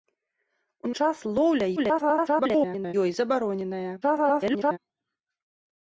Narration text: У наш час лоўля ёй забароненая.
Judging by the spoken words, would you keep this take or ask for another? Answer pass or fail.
fail